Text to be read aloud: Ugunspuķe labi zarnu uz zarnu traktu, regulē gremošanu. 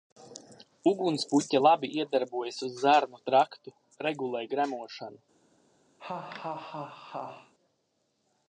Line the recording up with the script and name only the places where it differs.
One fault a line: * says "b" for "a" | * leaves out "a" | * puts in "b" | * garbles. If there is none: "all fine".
* says "iedarbojas" for "zarnu"